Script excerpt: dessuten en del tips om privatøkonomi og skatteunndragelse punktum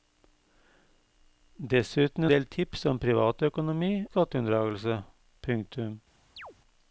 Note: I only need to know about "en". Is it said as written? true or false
false